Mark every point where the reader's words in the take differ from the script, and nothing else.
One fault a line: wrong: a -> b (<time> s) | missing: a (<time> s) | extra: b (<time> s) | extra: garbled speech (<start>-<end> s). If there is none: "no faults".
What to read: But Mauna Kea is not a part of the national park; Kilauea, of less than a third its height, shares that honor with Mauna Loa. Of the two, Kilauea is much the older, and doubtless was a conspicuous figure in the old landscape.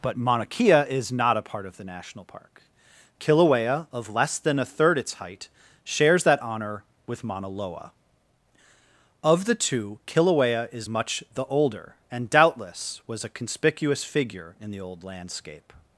no faults